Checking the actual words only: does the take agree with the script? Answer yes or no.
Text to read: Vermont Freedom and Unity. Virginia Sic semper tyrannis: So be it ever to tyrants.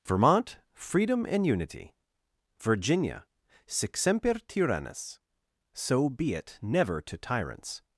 no